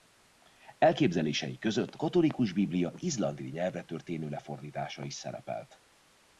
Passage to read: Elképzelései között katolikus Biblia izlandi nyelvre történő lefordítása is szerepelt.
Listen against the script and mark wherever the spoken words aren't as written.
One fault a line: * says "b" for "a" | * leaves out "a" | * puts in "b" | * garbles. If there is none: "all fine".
all fine